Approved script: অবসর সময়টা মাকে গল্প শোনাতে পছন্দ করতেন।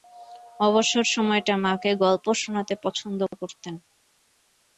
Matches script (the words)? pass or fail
pass